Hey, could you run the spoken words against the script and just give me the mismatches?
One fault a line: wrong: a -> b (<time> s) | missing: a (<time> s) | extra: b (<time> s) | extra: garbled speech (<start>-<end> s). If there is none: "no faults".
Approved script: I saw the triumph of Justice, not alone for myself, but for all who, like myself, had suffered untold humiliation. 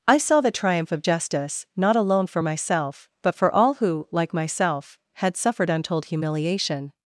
no faults